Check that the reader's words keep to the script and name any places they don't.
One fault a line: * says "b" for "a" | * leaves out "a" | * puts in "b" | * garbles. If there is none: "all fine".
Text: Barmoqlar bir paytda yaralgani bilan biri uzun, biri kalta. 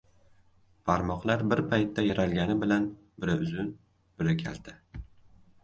all fine